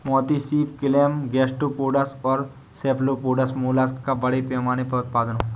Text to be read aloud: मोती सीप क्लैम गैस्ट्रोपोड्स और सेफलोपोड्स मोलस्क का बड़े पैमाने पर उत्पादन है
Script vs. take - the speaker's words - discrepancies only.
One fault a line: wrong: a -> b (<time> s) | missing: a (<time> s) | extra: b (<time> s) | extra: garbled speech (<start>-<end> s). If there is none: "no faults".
no faults